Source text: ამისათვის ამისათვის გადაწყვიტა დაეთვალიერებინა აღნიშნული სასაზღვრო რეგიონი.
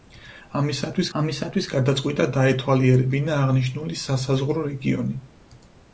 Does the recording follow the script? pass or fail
pass